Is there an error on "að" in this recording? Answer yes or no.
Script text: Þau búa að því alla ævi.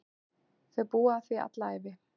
no